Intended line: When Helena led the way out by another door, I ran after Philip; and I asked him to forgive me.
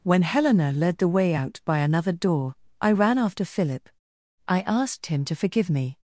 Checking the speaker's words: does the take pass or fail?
fail